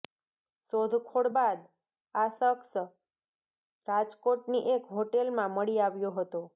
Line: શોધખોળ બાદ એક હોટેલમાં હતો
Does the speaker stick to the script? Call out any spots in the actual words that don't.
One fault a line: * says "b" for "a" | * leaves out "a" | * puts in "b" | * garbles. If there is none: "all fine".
* puts in "આ શખ્સ રાજકોટની"
* puts in "મળી આવ્યો"